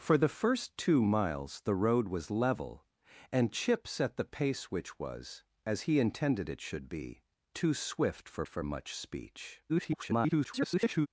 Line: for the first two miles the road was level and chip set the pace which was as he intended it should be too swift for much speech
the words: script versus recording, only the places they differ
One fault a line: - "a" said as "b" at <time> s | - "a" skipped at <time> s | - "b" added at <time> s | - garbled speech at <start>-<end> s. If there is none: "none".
- "for" added at 8.5 s
- garbled speech at 9.7-11.1 s